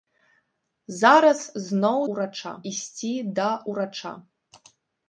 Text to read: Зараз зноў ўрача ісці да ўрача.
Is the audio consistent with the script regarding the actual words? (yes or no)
yes